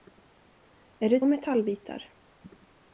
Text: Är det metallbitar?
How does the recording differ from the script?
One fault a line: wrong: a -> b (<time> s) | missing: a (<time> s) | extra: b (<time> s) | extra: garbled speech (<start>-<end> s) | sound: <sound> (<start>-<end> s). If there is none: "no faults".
no faults